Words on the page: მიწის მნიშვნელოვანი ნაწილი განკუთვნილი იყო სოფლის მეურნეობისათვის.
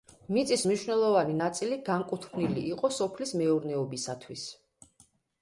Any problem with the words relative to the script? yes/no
no